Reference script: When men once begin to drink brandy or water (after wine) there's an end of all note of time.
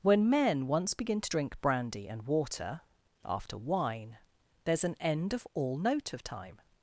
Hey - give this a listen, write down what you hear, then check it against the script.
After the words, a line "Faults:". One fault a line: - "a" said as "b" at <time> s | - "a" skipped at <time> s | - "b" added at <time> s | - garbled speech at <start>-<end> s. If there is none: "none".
When men once begin to drink brandy and water (after wine) there's an end of all note of time.
Faults:
- "or" said as "and" at 2.1 s